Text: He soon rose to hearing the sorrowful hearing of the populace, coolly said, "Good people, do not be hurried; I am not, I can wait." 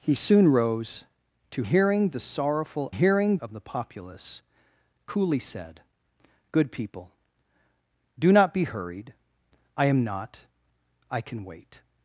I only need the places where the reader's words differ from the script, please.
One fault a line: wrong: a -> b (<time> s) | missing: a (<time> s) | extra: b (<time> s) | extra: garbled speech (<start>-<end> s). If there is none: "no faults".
no faults